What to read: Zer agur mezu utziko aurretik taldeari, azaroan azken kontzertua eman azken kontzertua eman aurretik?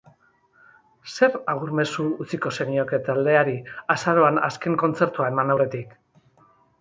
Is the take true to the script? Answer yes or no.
no